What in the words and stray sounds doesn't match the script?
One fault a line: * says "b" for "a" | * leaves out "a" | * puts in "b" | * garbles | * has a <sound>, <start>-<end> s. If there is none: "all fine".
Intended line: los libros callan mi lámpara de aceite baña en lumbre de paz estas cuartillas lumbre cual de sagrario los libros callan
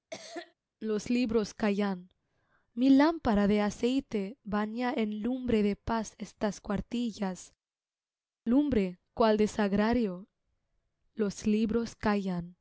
* has a cough, 0.1-0.5 s